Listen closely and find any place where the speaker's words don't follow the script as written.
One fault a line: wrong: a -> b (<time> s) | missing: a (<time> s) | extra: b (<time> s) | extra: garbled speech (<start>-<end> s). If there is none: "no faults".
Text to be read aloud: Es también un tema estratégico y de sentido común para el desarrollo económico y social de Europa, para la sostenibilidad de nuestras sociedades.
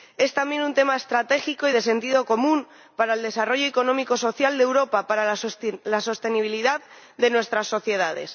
no faults